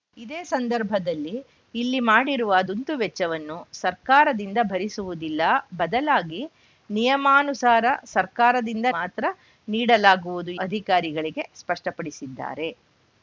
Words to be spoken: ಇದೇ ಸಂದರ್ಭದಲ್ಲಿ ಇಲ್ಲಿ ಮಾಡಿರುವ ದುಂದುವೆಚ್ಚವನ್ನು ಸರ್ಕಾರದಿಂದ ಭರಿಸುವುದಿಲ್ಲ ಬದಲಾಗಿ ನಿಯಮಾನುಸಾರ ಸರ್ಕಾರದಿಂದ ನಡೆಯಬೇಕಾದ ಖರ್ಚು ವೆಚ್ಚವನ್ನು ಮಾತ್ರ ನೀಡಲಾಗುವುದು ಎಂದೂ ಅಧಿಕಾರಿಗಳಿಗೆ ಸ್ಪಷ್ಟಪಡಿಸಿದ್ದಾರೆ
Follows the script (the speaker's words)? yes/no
no